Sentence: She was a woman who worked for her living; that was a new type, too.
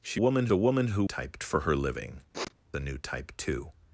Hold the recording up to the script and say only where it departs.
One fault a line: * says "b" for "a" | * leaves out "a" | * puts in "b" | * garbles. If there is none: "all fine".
* says "woman" for "was"
* says "type" for "worked"
* leaves out "that was"